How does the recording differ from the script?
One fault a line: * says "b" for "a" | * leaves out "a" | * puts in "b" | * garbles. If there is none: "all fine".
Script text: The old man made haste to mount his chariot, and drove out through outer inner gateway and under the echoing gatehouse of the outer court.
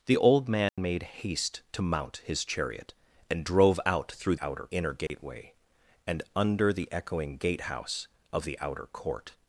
all fine